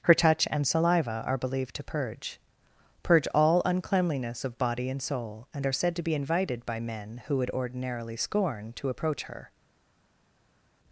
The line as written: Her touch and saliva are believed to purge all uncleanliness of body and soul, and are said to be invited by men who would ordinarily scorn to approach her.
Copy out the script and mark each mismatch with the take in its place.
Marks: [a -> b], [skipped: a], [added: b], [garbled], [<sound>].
Her touch and saliva are believed to purge [added: purge] all uncleanliness of body and soul, and are said to be invited by men who would ordinarily scorn to approach her.